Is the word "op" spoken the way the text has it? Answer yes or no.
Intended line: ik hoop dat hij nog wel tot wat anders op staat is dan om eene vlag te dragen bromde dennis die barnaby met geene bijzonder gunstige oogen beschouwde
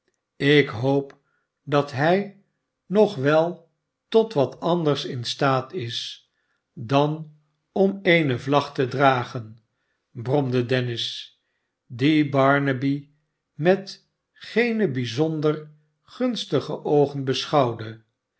no